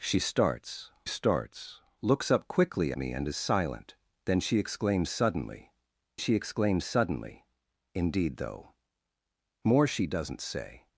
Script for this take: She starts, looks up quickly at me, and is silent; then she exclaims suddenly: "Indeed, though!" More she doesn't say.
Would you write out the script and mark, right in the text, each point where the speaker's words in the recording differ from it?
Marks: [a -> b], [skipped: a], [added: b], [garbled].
She starts, [added: starts] looks up quickly [skipped: at] me, and is silent; then she exclaims suddenly: [added: she exclaims suddenly] "Indeed, though!" More she doesn't say.